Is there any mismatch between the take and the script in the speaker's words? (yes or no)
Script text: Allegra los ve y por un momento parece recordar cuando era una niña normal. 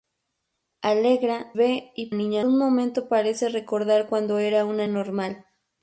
yes